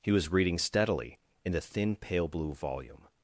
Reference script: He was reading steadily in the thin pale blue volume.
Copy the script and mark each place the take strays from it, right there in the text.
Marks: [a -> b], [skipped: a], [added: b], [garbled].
He was reading steadily in the thin pale blue volume.